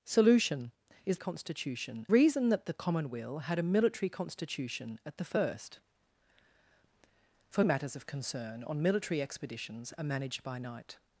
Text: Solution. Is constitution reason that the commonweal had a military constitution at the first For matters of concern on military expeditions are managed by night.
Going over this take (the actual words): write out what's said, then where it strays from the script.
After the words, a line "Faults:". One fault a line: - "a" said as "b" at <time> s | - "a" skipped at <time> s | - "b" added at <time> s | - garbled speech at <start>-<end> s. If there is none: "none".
Solution. Is constitution reason that the commonweal had a military constitution at the first For matters of concern on military expeditions are managed by night.
Faults:
none